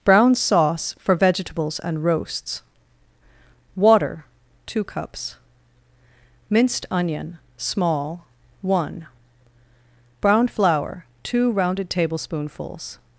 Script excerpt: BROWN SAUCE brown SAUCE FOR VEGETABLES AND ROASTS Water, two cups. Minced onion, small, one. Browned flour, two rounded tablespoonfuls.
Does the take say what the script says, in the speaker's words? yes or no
no